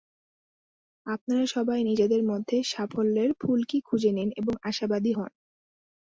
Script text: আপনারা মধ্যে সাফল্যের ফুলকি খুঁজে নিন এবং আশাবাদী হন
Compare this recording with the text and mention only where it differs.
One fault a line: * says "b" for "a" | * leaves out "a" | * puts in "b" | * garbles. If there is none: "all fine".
* puts in "সবাই নিজেদের"